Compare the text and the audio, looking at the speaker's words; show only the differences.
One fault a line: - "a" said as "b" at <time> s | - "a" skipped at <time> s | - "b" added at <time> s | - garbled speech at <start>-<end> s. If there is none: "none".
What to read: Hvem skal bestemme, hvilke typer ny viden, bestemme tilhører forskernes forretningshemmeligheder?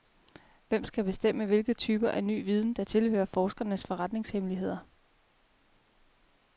- "af" added at 2.1 s
- "bestemme" said as "der" at 2.7 s